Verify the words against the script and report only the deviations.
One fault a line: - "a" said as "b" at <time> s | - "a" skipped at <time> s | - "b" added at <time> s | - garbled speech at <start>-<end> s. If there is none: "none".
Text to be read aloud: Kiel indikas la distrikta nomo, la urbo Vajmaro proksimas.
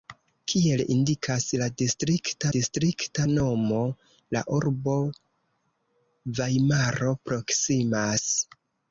- "distrikta" added at 2.5 s